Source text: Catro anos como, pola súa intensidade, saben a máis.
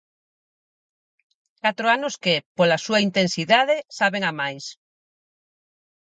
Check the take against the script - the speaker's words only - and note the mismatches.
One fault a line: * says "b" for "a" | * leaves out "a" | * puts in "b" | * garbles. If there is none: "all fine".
* says "que" for "como"